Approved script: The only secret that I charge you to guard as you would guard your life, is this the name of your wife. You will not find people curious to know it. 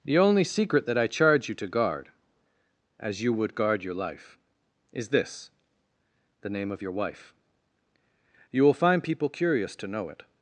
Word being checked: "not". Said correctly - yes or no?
no